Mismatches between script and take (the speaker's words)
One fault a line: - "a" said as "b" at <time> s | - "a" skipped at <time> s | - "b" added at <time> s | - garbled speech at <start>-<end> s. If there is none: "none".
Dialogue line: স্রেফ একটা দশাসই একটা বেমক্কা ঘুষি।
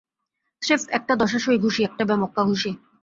- "ঘুষি" added at 1.6 s